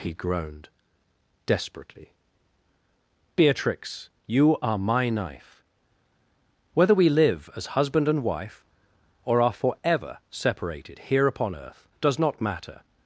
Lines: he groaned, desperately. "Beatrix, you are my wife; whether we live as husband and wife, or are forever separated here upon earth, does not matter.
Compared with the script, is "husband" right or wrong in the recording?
right